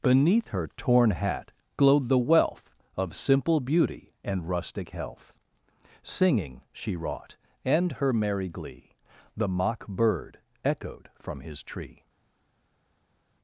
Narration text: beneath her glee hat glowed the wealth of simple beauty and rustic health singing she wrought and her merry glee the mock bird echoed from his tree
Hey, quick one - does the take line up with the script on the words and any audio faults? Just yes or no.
no